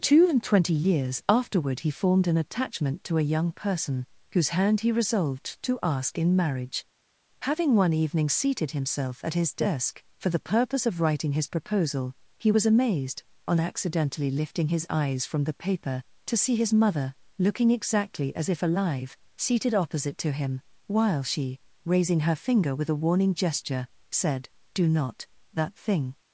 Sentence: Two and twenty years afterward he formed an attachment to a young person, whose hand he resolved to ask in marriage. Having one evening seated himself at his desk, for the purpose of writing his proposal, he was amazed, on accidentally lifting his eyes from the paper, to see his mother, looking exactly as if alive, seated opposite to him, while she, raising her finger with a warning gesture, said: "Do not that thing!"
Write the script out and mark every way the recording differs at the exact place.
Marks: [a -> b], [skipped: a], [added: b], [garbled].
Two and twenty years afterward he formed an attachment to a young person, whose hand he resolved to ask in marriage. Having one evening seated himself at his desk, for the purpose of writing his proposal, he was amazed, on accidentally lifting his eyes from the paper, to see his mother, looking exactly as if alive, seated opposite to him, while she, raising her finger with a warning gesture, said: "Do not that thing!"